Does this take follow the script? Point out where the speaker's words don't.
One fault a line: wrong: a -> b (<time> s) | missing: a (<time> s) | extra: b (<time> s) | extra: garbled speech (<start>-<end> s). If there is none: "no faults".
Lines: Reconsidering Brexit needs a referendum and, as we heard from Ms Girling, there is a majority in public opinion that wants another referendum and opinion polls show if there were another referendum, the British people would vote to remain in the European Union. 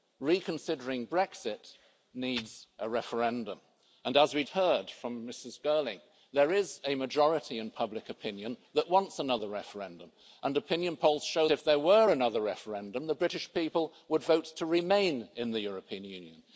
no faults